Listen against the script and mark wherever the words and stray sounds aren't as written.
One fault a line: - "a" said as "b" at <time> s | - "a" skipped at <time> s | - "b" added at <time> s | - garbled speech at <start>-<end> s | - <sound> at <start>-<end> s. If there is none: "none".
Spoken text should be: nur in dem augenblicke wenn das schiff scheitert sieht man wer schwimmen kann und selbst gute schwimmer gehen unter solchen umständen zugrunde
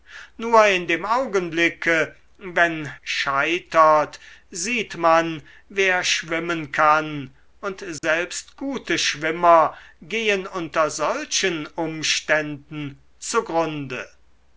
- "das schiff" skipped at 2.9 s
- dropout at 8.0-8.0 s